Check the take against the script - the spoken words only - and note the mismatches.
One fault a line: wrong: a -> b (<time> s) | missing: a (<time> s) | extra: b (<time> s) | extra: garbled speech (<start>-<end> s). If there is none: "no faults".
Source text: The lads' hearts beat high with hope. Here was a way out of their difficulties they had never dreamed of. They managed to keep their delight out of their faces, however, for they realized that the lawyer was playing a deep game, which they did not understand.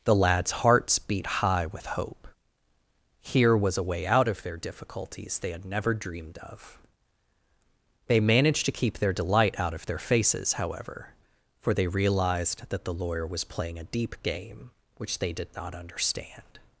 no faults